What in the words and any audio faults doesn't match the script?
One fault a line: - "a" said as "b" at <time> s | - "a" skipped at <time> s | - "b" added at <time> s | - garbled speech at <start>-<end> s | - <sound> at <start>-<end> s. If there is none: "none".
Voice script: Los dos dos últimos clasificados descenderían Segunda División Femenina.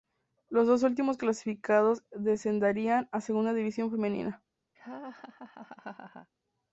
- "dos" skipped at 0.8 s
- "a" added at 3.1 s
- laugh at 4.7-6.3 s